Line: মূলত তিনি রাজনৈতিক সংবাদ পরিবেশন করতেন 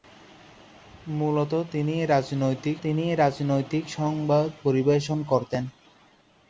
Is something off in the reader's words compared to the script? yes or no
yes